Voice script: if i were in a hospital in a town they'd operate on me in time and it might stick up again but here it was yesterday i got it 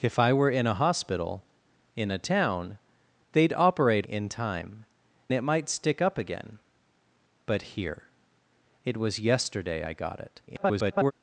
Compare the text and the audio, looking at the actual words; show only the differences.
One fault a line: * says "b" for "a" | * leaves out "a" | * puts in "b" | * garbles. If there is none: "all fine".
* leaves out "on me"
* leaves out "and"
* garbles